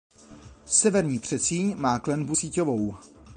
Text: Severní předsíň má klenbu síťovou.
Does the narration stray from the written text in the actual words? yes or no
no